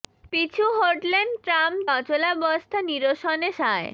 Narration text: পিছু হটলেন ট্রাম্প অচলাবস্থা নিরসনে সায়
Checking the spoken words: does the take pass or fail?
pass